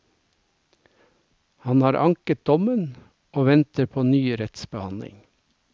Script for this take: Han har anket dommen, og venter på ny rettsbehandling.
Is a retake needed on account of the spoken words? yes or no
no